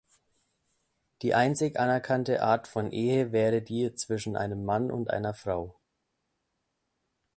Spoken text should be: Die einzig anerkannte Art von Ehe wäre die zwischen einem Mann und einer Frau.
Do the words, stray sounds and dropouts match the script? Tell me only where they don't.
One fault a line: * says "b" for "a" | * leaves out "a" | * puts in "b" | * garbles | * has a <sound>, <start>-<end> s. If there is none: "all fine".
all fine